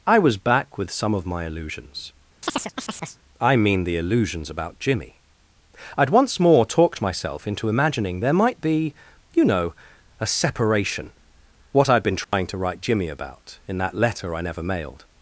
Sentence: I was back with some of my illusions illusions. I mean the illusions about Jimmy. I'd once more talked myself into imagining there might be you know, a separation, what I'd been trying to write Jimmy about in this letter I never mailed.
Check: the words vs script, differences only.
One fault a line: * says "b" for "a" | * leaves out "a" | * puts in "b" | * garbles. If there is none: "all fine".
* leaves out "illusions"
* says "that" for "this"